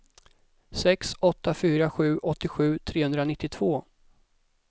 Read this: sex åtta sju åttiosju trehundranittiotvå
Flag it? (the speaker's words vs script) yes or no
yes